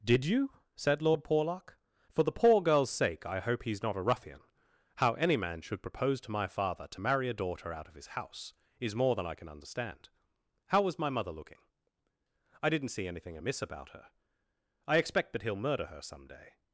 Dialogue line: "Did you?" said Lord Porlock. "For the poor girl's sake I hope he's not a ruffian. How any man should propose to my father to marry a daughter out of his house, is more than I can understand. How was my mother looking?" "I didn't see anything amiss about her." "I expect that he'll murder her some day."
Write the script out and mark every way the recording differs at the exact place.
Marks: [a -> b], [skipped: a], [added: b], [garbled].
"Did you?" said Lord Porlock. "For the poor girl's sake I hope he's not a ruffian. How any man should propose to my father to marry a daughter out of his house, is more than I can understand. How was my mother looking?" "I didn't see anything amiss about her." "I expect that he'll murder her some day."